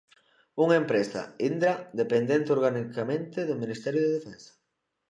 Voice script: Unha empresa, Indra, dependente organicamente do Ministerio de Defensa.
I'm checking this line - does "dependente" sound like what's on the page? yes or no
yes